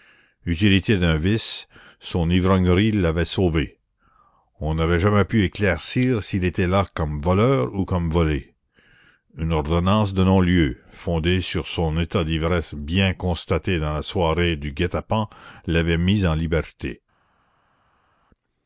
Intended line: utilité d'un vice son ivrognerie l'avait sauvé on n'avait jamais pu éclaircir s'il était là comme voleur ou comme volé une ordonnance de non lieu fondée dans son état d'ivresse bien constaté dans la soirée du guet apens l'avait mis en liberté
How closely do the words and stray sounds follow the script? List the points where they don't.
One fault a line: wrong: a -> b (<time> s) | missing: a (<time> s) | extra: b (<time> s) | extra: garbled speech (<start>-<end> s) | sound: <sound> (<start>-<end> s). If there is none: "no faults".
wrong: dans -> sur (11.4 s)